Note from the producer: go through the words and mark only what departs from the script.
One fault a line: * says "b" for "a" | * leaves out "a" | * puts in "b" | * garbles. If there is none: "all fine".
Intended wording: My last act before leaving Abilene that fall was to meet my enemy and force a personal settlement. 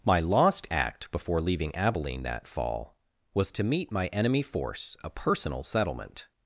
* says "lost" for "last"
* leaves out "and"